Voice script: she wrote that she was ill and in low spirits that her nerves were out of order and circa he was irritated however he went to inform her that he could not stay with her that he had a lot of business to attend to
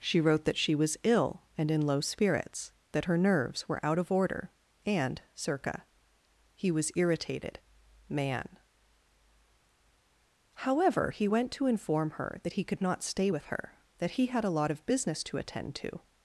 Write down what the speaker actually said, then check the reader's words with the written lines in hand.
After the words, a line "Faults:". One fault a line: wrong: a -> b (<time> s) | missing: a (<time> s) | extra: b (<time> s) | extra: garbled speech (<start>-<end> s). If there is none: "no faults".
she wrote that she was ill and in low spirits that her nerves were out of order and circa he was irritated man however he went to inform her that he could not stay with her that he had a lot of business to attend to
Faults:
extra: man (8.1 s)